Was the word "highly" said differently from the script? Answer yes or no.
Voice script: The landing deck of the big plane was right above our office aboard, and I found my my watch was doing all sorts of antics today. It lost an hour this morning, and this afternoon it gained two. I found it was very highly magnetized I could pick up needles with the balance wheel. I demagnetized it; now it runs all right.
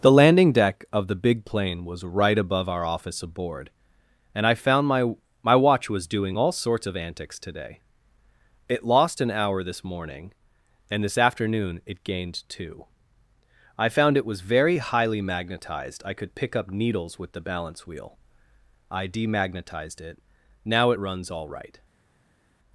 no